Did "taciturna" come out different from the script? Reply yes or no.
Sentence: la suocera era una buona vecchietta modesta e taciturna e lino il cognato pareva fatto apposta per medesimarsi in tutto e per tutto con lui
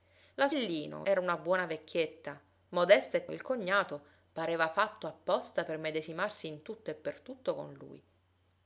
yes